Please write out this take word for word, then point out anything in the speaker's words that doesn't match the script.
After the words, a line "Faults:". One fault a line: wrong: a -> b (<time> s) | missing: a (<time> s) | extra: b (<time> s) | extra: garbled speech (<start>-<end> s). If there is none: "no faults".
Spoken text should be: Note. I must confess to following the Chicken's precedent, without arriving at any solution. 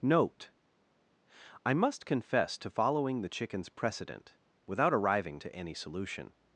Note. I must confess to following the Chicken's precedent, without arriving to any solution.
Faults:
wrong: at -> to (5.4 s)